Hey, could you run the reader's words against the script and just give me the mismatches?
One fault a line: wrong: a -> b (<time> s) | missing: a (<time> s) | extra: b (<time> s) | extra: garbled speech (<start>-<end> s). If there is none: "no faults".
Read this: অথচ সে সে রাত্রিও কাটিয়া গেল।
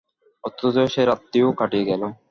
missing: সে (1.0 s)